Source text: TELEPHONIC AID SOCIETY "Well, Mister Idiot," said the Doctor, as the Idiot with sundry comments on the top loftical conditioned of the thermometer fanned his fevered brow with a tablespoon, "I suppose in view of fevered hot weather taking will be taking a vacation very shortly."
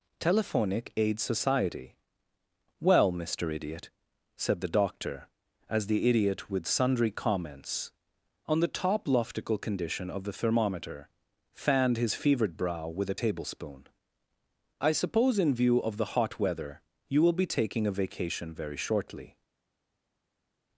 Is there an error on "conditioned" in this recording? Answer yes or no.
yes